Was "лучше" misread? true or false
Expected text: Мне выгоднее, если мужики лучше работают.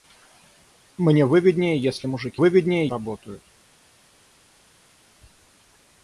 true